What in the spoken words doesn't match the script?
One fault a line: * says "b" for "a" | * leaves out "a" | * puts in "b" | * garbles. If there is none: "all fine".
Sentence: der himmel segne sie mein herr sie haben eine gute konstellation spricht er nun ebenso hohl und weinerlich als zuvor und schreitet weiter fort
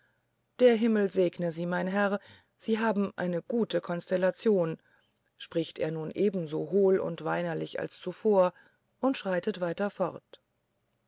all fine